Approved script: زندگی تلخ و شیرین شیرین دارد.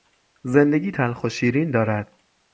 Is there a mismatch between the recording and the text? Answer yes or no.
yes